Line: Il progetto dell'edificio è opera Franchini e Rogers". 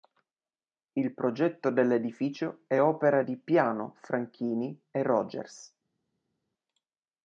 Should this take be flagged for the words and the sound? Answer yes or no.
yes